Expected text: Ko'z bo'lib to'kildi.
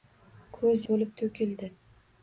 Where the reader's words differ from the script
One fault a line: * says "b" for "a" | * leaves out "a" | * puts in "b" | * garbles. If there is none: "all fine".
all fine